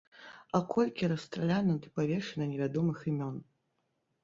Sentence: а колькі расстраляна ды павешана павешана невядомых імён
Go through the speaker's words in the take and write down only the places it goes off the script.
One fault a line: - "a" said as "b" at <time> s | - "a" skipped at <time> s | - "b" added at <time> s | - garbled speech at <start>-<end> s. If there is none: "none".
- "павешана" skipped at 2.5 s